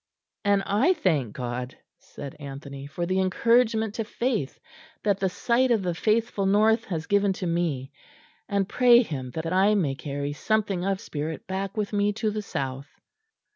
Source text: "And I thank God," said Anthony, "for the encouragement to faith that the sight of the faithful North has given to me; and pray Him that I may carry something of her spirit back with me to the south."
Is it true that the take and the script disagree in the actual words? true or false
true